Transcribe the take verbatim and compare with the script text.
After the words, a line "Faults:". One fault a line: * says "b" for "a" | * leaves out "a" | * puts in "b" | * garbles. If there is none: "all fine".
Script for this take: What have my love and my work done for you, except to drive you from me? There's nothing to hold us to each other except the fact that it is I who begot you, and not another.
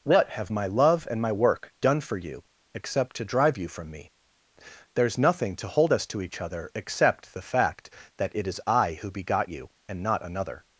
What have my love and my work done for you, except to drive you from me? There's nothing to hold us to each other except the fact that it is I who begot you, and not another.
Faults:
all fine